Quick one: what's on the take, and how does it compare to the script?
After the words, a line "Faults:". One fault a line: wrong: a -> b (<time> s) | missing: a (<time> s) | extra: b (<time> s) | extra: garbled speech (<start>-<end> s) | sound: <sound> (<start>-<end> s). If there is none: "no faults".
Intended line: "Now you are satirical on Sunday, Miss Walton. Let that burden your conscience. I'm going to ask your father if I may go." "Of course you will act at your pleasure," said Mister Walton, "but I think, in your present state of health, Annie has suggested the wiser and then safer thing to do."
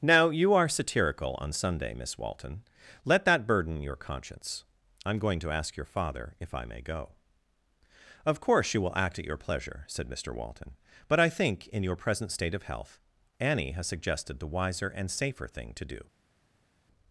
"Now you are satirical on Sunday, Miss Walton. Let that burden your conscience. I'm going to ask your father if I may go." "Of course you will act at your pleasure," said Mister Walton, "but I think, in your present state of health, Annie has suggested the wiser and safer thing to do."
Faults:
missing: then (15.1 s)